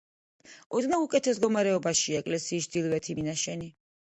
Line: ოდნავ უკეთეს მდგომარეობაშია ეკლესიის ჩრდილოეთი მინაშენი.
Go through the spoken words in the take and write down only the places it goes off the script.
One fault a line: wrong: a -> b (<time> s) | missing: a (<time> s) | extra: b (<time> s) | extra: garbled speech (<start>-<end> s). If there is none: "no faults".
no faults